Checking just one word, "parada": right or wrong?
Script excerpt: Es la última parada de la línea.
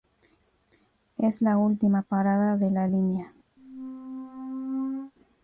right